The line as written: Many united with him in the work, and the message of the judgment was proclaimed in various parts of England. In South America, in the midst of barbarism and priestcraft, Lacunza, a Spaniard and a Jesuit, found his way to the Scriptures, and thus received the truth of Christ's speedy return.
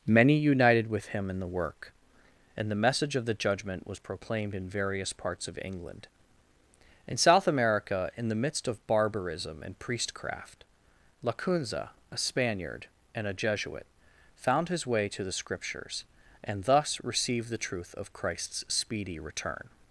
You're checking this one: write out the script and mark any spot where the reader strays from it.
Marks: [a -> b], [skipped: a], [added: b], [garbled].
Many united with him in the work, and the message of the judgment was proclaimed in various parts of England. In South America, in the midst of barbarism and priestcraft, Lacunza, a Spaniard and a Jesuit, found his way to the Scriptures, and thus received the truth of Christ's speedy return.